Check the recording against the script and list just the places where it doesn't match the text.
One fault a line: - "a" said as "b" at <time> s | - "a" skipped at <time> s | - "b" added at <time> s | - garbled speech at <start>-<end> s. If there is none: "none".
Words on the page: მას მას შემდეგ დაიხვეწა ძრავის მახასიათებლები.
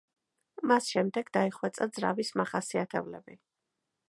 - "მას" skipped at 0.9 s